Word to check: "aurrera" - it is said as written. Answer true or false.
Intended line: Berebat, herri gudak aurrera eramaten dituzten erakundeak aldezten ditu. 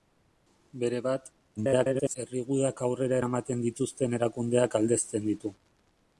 true